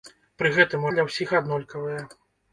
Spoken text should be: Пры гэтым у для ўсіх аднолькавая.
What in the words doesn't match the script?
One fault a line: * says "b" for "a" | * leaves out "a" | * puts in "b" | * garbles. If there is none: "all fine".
all fine